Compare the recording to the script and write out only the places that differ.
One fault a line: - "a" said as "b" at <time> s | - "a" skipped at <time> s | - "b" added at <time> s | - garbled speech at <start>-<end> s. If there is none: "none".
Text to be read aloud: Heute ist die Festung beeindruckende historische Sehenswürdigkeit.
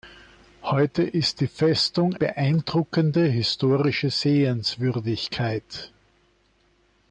none